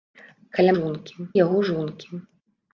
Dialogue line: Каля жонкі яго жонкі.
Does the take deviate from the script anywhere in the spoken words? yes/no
no